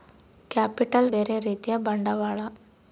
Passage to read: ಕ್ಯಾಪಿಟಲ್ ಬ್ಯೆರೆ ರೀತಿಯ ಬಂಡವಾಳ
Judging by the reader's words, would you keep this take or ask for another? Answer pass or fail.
pass